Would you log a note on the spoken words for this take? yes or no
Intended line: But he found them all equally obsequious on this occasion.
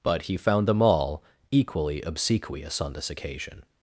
no